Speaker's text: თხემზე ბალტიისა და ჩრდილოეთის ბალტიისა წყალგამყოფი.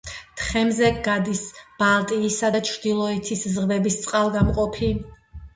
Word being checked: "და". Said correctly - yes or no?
yes